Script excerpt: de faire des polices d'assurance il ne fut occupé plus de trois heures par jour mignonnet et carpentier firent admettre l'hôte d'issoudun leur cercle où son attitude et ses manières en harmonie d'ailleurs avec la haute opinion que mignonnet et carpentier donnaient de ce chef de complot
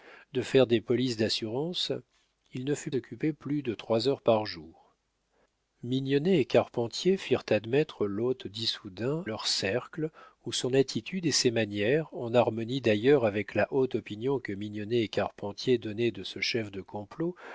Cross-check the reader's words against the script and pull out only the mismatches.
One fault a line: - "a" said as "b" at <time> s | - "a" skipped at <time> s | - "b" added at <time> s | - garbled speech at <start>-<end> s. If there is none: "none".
none